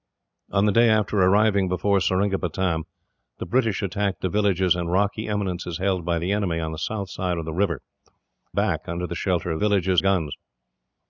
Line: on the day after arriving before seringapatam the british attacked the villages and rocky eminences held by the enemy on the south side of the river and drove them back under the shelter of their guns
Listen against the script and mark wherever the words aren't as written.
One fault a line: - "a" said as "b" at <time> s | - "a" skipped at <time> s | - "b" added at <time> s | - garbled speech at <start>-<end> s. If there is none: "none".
- "and drove them" skipped at 7.8 s
- "their" said as "villages" at 9.6 s